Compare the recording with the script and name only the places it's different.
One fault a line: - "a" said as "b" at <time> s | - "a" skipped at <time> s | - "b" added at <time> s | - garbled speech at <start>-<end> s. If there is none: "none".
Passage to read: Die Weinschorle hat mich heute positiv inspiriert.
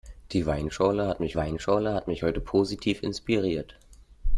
- "Weinschorle hat mich" added at 1.4 s